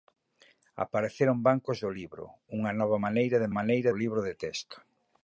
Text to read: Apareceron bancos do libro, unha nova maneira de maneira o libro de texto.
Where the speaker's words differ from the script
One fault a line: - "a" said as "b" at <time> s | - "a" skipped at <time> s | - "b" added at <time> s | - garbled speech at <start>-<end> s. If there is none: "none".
none